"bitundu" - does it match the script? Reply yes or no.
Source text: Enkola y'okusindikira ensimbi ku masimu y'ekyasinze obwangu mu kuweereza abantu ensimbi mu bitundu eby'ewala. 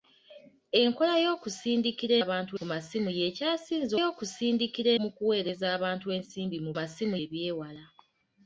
no